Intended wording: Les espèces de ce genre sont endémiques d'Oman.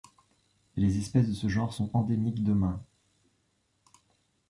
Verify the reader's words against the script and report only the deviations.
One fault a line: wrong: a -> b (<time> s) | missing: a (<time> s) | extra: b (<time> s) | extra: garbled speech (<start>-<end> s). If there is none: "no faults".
no faults